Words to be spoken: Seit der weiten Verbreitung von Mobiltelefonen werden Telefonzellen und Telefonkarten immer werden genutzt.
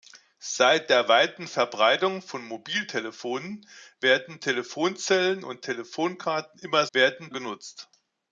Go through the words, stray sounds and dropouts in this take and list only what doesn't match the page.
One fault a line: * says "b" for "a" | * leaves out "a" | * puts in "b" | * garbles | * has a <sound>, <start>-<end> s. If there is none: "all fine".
all fine